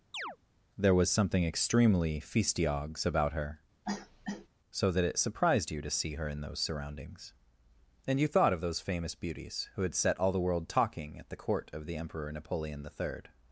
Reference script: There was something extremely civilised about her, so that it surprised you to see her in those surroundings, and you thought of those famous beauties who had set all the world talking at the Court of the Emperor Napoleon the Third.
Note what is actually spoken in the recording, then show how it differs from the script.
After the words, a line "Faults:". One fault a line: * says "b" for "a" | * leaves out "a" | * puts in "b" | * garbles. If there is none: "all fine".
There was something extremely feastiogs about her, so that it surprised you to see her in those surroundings, and you thought of those famous beauties who had set all the world talking at the Court of the Emperor Napoleon the Third.
Faults:
* says "feastiogs" for "civilised"